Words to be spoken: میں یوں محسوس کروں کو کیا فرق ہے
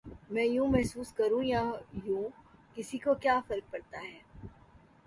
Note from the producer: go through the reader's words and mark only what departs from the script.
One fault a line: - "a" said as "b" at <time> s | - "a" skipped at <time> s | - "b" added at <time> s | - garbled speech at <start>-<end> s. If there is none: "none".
- "یا یوں کسی" added at 1.4 s
- "پڑتا" added at 3.7 s